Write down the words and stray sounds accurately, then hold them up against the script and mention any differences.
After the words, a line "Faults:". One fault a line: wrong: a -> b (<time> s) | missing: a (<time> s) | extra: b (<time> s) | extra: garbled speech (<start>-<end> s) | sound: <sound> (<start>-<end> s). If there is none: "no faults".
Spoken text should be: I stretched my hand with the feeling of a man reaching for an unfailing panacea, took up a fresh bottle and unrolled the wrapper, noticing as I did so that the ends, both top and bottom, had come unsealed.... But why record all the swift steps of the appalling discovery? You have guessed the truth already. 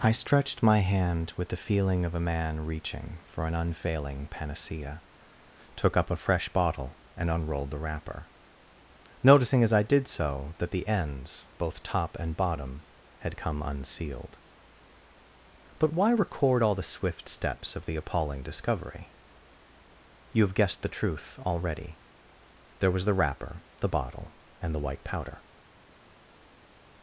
I stretched my hand with the feeling of a man reaching for an unfailing panacea, took up a fresh bottle and unrolled the wrapper, noticing as I did so that the ends, both top and bottom, had come unsealed.... But why record all the swift steps of the appalling discovery? You have guessed the truth already. There was the wrapper, the bottle, and the white powder
Faults:
extra: There was the wrapper the bottle and the white powder (22.8 s)